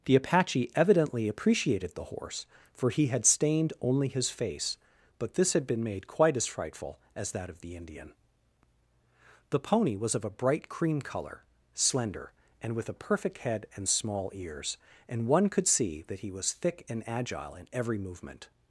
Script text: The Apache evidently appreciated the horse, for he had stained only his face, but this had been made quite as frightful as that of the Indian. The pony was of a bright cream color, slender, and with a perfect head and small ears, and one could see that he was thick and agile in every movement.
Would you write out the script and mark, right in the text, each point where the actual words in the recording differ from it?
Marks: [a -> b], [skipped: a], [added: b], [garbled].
The Apache evidently appreciated the horse, for he had stained only his face, but this had been made quite as frightful as that of the Indian. The pony was of a bright cream color, slender, and with a perfect head and small ears, and one could see that he was thick and agile in every movement.